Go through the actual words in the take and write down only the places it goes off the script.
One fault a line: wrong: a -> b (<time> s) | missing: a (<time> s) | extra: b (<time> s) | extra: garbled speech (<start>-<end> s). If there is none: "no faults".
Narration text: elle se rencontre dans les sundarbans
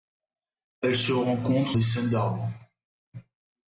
missing: dans (1.8 s)